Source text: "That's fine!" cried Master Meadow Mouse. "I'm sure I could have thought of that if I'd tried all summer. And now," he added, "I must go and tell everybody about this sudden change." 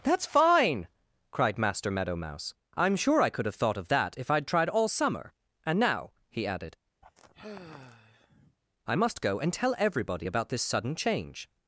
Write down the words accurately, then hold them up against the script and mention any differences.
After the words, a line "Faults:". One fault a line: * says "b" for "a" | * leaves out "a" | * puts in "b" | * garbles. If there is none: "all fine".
"That's fine!" cried Master Meadow Mouse. "I'm sure I could have thought of that if I'd tried all summer. And now," he added, "I must go and tell everybody about this sudden change."
Faults:
all fine